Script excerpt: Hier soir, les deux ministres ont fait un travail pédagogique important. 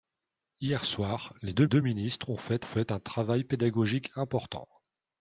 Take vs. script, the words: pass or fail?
fail